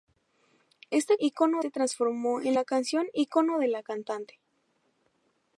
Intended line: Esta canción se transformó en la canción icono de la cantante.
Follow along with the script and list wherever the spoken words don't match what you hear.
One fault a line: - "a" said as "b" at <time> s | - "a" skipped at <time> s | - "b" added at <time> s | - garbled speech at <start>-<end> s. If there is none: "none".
- "canción" said as "icono" at 1.2 s